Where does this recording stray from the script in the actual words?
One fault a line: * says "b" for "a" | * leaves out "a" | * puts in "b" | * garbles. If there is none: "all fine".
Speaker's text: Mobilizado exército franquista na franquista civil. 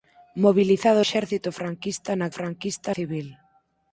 all fine